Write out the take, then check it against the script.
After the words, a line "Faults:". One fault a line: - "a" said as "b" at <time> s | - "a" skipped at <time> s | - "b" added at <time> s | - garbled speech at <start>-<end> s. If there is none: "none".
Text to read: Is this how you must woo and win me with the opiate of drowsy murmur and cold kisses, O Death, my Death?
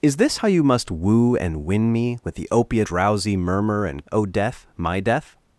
Is this how you must woo and win me with the opiate drowsy murmur and O Death, my Death?
Faults:
- "of" skipped at 2.9 s
- "cold kisses" skipped at 4.0 s